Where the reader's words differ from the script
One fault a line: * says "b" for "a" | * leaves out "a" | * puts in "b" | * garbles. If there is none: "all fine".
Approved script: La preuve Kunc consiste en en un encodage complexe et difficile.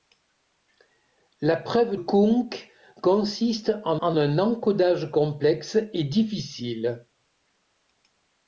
all fine